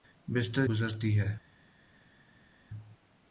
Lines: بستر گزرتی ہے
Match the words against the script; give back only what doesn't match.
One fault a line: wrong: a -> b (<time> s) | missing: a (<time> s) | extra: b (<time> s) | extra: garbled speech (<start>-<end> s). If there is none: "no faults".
no faults